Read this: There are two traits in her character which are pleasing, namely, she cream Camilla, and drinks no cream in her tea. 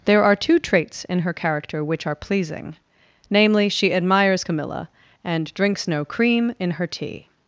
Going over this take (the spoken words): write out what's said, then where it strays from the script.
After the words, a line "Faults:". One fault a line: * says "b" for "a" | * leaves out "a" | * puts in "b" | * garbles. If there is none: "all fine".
There are two traits in her character which are pleasing, namely, she admires Camilla, and drinks no cream in her tea.
Faults:
* says "admires" for "cream"